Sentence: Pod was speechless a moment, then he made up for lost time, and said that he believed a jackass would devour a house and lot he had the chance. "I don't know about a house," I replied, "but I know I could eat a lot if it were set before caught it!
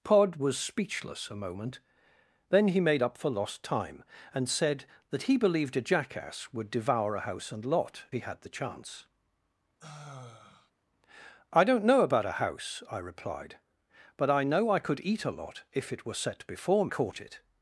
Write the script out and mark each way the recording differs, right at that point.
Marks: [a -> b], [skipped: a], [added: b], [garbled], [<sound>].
Pod was speechless a moment, then he made up for lost time, and said that he believed a jackass would devour a house and lot he had the chance. [sigh] "I don't know about a house," I replied, "but I know I could eat a lot if it were set before caught it!